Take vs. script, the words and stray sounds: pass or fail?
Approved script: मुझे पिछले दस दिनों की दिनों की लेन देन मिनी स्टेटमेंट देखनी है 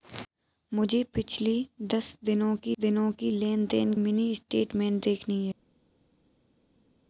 pass